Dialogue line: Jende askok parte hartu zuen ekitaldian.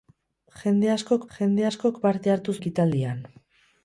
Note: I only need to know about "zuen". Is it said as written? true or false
false